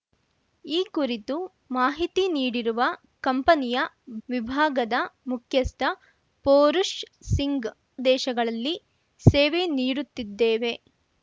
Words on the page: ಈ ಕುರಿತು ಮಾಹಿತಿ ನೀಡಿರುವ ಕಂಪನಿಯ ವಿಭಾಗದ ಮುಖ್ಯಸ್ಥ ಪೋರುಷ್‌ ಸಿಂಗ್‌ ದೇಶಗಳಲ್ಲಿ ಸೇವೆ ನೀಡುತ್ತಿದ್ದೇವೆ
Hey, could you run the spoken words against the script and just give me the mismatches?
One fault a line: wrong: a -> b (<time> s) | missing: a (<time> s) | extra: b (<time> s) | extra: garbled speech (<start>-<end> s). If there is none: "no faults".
no faults